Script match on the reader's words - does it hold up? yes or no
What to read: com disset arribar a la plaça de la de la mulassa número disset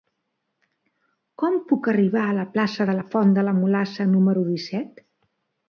no